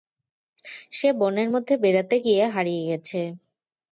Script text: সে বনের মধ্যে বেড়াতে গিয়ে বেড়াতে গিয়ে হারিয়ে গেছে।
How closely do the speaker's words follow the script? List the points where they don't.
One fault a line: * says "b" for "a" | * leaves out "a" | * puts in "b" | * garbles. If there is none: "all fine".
* leaves out "বেড়াতে গিয়ে"